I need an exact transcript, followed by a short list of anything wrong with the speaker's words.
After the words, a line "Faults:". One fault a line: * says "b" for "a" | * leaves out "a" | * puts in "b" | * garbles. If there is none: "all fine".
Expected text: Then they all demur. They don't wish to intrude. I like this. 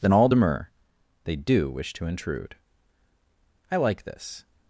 Then all demur. They do wish to intrude. I like this.
Faults:
* leaves out "they"
* says "do" for "don't"